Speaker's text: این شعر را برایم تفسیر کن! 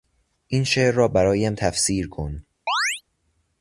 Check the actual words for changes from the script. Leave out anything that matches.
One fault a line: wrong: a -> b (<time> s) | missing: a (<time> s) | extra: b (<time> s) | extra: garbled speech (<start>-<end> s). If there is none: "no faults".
no faults